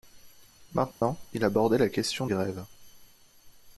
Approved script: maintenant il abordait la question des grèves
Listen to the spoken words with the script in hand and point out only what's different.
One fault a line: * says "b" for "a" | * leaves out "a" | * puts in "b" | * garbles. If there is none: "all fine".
* leaves out "des"